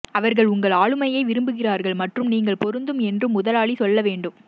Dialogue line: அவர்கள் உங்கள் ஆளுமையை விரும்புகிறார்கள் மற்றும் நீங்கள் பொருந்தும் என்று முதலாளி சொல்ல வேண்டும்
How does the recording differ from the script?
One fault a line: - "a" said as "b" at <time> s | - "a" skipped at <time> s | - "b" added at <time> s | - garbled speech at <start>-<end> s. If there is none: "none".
none